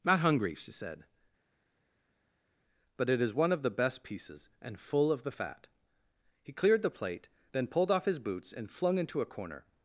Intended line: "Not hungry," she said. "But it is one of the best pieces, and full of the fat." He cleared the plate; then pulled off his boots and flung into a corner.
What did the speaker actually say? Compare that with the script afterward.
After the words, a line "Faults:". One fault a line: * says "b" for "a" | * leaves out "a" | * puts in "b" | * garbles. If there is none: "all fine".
"Not hungry," she said. "But it is one of the best pieces, and full of the fat." He cleared the plate; then pulled off his boots and flung into a corner.
Faults:
all fine